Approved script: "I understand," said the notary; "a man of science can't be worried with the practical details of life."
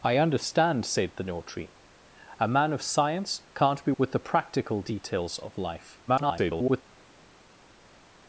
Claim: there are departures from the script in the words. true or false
true